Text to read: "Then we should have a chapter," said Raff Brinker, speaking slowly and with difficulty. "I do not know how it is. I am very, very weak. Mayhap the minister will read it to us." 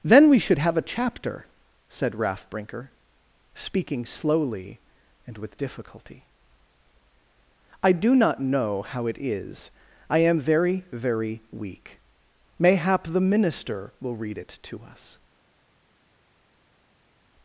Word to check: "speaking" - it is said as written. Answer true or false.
true